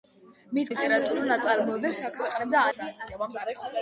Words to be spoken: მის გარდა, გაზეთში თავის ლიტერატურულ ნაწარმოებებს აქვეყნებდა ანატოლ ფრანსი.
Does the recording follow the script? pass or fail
fail